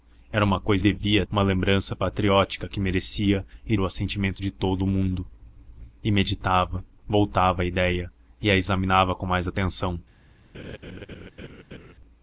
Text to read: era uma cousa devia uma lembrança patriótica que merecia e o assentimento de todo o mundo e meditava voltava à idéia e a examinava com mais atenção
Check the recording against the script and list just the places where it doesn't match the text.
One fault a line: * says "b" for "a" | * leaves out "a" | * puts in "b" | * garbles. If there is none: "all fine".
all fine